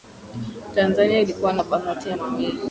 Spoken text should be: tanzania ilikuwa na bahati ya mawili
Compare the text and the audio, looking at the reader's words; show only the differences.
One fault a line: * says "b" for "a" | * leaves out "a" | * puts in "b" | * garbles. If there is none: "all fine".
all fine